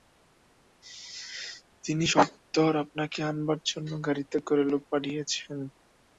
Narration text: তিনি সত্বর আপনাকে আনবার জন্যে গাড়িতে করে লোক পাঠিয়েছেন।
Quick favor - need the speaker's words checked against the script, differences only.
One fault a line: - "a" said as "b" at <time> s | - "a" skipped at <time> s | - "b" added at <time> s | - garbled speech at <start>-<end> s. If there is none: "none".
none